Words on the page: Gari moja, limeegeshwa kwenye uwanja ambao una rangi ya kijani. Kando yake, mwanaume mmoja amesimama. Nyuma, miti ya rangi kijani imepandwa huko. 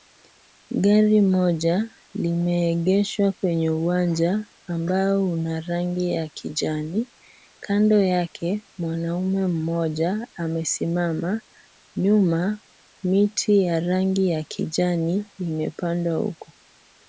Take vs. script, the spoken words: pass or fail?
fail